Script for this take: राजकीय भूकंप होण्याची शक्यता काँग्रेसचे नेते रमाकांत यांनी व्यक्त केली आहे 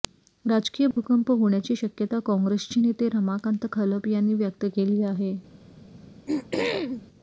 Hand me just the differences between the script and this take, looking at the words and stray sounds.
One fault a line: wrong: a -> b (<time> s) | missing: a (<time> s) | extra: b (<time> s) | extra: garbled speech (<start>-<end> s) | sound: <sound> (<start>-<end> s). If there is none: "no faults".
sound: dropout (0.9-1.0 s)
extra: खलप (3.7 s)
sound: throat clearing (5.9-7.1 s)